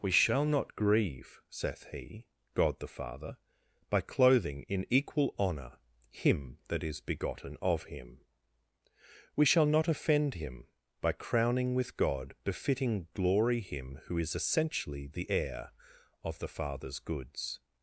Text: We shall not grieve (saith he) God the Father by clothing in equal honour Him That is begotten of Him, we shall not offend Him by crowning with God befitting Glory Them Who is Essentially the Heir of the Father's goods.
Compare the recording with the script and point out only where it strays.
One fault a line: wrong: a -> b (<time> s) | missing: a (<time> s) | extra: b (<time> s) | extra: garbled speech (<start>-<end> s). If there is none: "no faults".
wrong: Them -> Him (13.6 s)